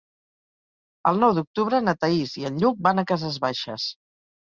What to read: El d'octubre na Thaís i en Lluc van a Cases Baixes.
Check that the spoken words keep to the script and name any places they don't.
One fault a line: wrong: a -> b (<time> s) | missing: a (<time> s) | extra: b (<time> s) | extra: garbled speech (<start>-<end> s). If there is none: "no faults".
extra: nou (1.2 s)